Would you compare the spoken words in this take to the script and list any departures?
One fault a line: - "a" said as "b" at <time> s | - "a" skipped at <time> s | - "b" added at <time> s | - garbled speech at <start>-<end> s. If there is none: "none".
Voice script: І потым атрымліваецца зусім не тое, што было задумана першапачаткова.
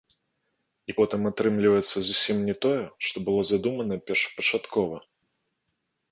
none